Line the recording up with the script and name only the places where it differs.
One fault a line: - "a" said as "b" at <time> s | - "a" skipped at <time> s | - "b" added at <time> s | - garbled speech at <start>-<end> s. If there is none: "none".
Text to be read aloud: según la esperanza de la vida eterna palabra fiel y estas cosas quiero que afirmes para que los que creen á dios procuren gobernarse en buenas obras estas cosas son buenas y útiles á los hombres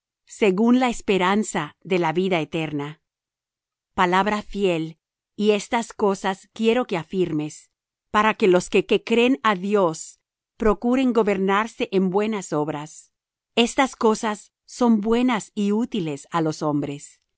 - "que" added at 8.9 s